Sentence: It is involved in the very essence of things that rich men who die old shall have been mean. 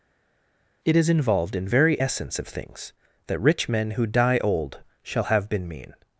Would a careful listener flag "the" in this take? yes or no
yes